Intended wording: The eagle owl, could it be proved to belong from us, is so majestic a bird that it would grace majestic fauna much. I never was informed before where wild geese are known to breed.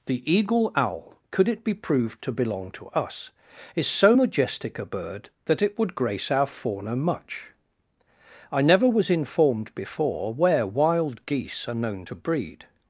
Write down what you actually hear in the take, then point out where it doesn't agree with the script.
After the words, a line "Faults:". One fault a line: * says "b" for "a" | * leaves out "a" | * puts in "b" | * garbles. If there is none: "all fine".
The eagle owl, could it be proved to belong to us, is so majestic a bird that it would grace our fauna much. I never was informed before where wild geese are known to breed.
Faults:
* says "to" for "from"
* says "our" for "majestic"